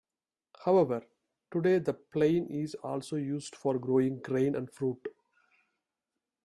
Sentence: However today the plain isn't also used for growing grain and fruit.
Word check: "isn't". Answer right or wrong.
wrong